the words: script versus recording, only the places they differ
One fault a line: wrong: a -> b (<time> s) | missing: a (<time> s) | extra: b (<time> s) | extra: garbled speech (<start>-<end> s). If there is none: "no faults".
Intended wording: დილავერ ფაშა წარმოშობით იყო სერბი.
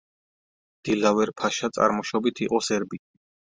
no faults